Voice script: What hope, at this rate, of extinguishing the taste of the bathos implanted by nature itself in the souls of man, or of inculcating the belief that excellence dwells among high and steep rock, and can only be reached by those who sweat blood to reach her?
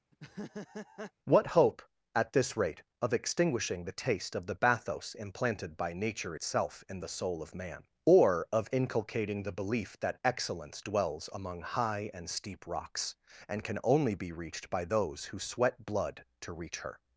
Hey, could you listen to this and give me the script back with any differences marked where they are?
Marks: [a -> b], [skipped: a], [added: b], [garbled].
What hope, at this rate, of extinguishing the taste of the bathos implanted by nature itself in the [souls -> soul] of man, or of inculcating the belief that excellence dwells among high and steep [rock, -> rocks] and can only be reached by those who sweat blood to reach her?